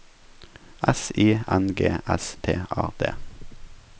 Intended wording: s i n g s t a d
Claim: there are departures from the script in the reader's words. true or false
false